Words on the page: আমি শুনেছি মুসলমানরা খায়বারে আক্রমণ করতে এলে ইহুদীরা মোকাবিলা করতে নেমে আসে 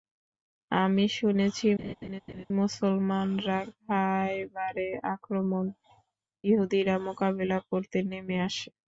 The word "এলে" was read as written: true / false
false